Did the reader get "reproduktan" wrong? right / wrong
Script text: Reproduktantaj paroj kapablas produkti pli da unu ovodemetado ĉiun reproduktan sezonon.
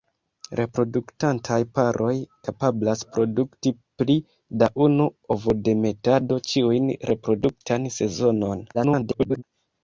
right